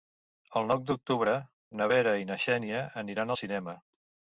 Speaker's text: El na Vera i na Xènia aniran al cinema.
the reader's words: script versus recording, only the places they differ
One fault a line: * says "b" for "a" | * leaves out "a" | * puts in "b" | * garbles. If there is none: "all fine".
* puts in "nou d'octubre"